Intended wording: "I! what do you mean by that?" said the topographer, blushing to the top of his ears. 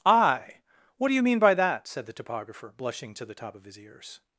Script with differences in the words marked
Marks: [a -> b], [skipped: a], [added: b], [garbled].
"I! what do you mean by that?" said the topographer, blushing to the top of his ears.